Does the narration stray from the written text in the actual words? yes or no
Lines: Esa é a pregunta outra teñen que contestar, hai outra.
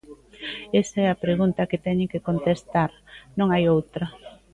yes